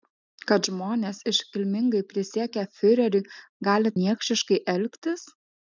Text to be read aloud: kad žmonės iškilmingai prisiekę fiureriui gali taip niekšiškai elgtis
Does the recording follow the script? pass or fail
fail